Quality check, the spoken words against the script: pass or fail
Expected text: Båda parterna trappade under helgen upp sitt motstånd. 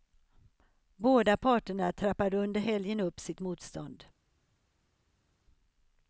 pass